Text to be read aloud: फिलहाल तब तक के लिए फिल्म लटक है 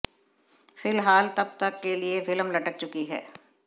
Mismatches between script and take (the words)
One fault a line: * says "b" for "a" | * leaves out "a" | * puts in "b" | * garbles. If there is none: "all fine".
* puts in "चुकी"